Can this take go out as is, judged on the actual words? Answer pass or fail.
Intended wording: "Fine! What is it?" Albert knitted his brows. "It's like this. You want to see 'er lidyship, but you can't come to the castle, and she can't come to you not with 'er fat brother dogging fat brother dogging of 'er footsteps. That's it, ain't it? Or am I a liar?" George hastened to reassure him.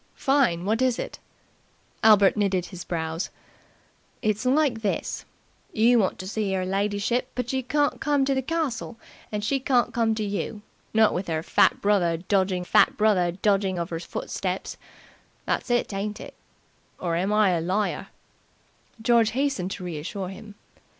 pass